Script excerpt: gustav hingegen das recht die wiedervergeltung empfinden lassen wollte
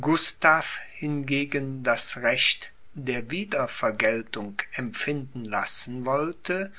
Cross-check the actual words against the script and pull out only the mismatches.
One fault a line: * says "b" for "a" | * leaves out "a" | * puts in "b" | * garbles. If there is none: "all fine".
* says "der" for "die"